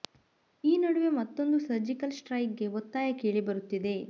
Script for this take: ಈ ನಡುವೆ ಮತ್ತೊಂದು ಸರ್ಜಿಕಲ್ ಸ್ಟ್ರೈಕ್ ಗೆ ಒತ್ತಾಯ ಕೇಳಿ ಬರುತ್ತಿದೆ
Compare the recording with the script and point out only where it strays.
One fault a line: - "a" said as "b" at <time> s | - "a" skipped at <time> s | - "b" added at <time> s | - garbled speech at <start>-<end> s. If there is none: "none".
none